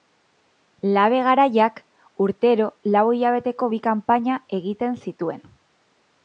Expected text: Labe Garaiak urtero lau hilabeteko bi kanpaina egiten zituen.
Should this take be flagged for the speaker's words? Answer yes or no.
no